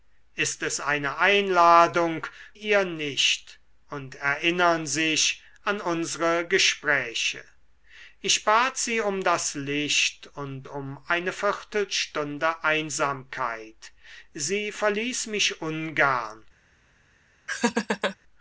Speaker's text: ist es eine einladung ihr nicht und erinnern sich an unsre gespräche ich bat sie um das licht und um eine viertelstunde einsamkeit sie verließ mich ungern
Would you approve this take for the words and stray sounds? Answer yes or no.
no